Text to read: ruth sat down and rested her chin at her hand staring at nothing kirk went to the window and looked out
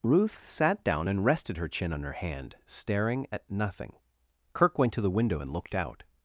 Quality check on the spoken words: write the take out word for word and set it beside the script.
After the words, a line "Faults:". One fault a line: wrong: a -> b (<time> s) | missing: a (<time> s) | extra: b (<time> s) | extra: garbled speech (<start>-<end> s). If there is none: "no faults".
ruth sat down and rested her chin on her hand staring at nothing kirk went to the window and looked out
Faults:
wrong: at -> on (1.9 s)